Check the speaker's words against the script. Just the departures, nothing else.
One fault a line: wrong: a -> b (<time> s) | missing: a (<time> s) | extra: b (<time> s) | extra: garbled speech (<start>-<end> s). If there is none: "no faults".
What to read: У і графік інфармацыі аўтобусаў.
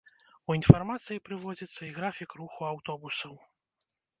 extra: інфармацыі прыводзіцца (0.6 s)
wrong: інфармацыі -> руху (2.4 s)